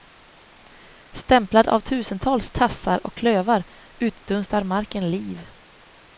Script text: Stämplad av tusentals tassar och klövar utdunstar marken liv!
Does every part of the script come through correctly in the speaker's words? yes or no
yes